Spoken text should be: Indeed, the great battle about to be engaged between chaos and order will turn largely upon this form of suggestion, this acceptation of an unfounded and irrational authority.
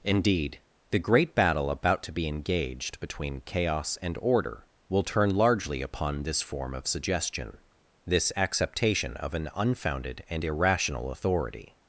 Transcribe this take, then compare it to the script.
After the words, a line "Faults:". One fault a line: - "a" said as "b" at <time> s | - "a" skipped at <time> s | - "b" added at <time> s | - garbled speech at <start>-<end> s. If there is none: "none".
Indeed, the great battle about to be engaged between chaos and order will turn largely upon this form of suggestion, this acceptation of an unfounded and irrational authority.
Faults:
none